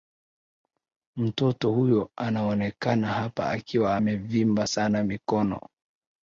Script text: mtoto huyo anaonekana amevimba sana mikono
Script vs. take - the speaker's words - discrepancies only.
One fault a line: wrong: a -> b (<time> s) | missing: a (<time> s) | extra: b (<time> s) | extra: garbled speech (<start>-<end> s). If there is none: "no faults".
extra: hapa akiwa (3.1 s)